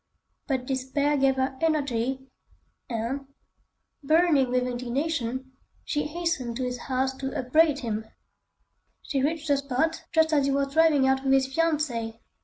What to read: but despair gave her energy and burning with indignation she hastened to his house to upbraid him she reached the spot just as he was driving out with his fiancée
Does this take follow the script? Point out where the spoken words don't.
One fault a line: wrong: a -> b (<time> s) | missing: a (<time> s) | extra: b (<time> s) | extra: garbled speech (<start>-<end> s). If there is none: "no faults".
no faults